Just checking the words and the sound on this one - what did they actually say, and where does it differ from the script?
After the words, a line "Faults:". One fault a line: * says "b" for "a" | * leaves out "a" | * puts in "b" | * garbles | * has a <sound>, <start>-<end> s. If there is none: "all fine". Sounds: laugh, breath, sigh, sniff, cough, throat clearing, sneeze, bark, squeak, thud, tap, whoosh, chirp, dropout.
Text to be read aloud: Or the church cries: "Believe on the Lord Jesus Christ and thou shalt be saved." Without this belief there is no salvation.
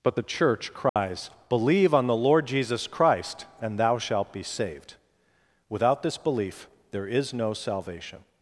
But the church cries: "Believe on the Lord Jesus Christ and thou shalt be saved." Without this belief there is no salvation.
Faults:
* says "But" for "Or"
* has a dropout, 0.9-1.0 s